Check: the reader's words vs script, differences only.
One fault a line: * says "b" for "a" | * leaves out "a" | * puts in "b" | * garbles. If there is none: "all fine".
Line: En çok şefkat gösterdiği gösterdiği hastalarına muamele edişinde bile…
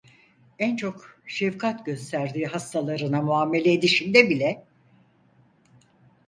* leaves out "gösterdiği"